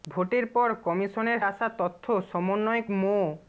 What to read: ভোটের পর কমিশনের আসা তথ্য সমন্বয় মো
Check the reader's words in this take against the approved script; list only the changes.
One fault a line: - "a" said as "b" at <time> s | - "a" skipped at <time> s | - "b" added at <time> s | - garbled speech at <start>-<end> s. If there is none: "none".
none